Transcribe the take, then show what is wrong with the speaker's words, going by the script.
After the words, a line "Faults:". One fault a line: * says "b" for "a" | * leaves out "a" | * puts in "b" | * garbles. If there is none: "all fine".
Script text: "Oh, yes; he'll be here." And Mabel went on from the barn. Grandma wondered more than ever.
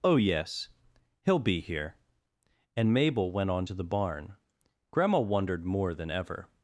"Oh, yes; he'll be here." And Mabel went on to the barn. Grandma wondered more than ever.
Faults:
* says "to" for "from"